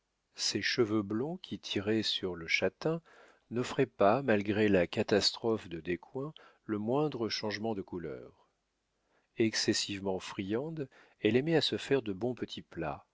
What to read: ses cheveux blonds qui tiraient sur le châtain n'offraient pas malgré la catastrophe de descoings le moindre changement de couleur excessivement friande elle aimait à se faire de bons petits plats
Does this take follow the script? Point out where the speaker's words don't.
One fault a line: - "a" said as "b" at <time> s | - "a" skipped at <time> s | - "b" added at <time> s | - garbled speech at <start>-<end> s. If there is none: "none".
none